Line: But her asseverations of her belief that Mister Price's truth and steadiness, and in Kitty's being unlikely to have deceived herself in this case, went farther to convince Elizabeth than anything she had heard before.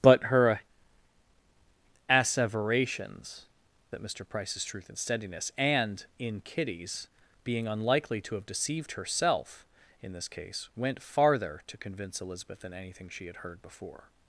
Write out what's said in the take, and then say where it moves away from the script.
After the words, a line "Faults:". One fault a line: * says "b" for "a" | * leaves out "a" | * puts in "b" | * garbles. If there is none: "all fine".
But her asseverations that Mister Price's truth and steadiness, and in Kitty's being unlikely to have deceived herself in this case, went farther to convince Elizabeth than anything she had heard before.
Faults:
* leaves out "of her belief"